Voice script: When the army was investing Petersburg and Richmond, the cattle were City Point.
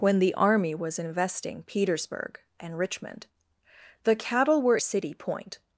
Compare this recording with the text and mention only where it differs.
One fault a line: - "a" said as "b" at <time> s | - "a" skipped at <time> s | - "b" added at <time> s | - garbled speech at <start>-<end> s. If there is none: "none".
none